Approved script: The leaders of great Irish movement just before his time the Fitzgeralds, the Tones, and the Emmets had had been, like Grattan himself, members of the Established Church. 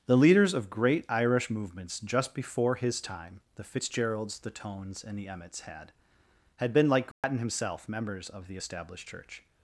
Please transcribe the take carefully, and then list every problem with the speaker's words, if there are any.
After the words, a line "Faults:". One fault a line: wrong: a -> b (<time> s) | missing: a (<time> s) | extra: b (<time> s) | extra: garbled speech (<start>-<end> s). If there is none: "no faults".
The leaders of great Irish movements just before his time the Fitzgeralds, the Tones, and the Emmets had had been, like Grattan himself, members of the Established Church.
Faults:
wrong: movement -> movements (1.5 s)